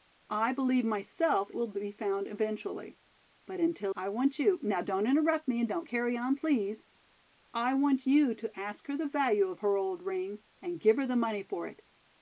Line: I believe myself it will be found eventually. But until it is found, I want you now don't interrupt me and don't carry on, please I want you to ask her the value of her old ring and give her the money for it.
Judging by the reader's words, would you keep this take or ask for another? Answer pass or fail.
fail